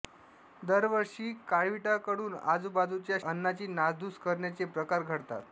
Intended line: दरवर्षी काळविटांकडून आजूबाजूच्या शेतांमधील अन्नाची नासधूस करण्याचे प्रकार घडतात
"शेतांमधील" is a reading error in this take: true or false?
true